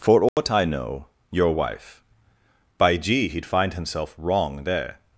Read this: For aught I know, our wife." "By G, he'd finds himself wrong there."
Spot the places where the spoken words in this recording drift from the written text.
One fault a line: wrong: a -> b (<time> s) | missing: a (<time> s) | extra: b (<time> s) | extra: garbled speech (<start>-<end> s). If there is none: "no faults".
wrong: our -> your (1.3 s)
wrong: finds -> find (3.4 s)